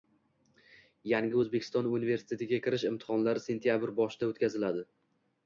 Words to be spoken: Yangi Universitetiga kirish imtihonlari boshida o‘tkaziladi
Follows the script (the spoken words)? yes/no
no